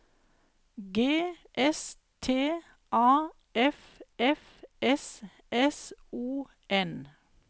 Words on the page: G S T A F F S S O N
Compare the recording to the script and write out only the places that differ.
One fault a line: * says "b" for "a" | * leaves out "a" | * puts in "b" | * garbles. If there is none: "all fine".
all fine